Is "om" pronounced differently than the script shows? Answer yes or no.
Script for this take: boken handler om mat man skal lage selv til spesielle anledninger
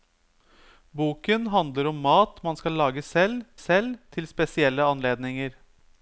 no